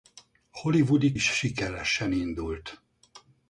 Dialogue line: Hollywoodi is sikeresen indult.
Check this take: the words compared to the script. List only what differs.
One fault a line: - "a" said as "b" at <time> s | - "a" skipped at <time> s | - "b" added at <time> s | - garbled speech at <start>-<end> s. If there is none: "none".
none